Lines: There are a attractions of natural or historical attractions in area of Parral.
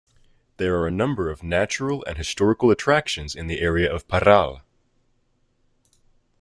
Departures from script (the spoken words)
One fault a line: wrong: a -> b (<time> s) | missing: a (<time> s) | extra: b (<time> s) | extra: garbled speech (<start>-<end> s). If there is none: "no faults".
wrong: attractions -> number (0.9 s)
wrong: or -> and (2.1 s)
extra: the (3.5 s)